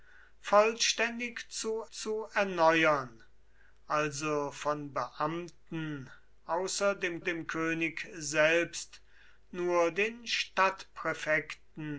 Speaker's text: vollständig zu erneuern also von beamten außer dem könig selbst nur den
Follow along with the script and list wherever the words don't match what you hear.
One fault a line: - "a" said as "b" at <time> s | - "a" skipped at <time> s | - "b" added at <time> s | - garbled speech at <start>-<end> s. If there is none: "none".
- "zu" added at 1.9 s
- "dem" added at 7.2 s